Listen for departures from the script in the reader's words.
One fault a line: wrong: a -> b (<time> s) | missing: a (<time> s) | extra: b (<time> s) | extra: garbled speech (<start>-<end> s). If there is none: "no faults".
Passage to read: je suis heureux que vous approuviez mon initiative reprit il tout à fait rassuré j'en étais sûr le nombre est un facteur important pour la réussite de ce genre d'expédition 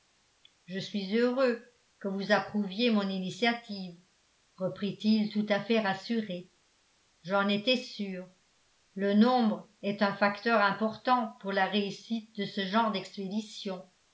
no faults